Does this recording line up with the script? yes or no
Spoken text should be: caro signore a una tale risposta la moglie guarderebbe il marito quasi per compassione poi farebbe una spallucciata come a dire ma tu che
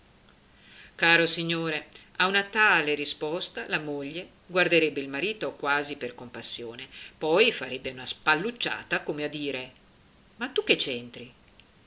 yes